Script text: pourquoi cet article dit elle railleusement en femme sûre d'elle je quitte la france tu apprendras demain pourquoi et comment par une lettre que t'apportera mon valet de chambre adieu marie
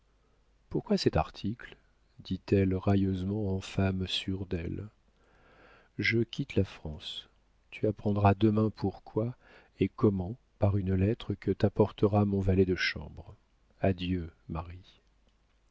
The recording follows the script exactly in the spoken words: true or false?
true